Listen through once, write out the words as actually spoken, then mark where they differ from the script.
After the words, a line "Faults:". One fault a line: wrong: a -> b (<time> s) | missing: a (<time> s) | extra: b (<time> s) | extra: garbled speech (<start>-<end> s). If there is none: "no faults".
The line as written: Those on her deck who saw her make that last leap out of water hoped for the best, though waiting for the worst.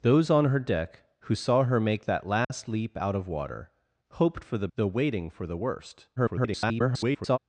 Those on her deck who saw her make that last leap out of water hoped for the though waiting for the worst. [garbled]
Faults:
missing: best (4.7 s)
extra: garbled speech (6.2-7.4 s)